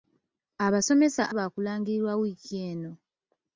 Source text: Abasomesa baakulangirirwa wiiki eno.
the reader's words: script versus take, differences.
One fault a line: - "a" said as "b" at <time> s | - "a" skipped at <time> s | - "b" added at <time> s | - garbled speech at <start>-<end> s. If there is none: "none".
none